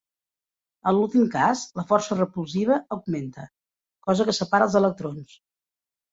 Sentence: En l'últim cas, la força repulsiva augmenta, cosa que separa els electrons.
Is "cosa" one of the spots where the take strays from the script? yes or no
no